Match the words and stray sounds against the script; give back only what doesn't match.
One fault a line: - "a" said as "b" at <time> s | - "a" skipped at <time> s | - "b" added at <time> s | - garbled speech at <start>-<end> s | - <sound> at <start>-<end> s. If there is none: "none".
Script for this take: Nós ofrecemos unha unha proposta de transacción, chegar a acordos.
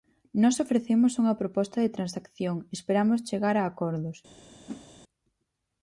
- "unha" skipped at 1.4 s
- "esperamos" added at 2.8 s
- whoosh at 4.7-4.9 s